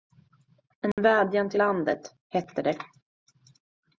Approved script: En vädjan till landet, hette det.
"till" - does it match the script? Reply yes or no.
yes